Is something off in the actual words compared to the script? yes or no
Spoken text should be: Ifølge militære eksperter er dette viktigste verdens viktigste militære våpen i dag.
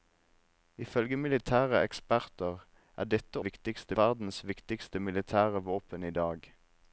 no